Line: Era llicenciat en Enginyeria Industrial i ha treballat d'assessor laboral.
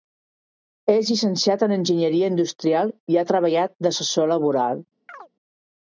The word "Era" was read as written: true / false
false